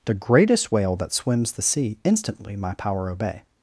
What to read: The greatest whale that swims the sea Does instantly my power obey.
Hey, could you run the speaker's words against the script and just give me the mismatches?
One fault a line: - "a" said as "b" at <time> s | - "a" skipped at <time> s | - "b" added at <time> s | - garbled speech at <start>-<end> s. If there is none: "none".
- "Does" skipped at 2.0 s